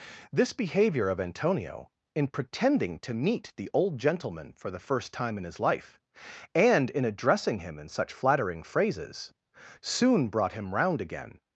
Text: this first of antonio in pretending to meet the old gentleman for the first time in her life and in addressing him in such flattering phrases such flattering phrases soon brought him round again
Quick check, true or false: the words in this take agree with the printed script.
false